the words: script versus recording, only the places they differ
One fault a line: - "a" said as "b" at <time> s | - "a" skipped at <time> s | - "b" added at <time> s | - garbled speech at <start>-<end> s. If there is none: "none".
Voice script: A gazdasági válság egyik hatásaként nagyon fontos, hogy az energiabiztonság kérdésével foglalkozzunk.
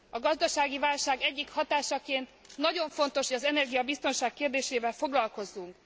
- "hogy" skipped at 3.3 s